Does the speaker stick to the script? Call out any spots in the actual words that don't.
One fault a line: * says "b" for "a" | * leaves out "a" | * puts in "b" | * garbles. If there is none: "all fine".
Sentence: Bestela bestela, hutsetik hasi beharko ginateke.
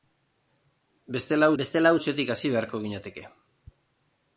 all fine